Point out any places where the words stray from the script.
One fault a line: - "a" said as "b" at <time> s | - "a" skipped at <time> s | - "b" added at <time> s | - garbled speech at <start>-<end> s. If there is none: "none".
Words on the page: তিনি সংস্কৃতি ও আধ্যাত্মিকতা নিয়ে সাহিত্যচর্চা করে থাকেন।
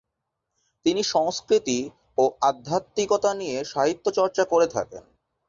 none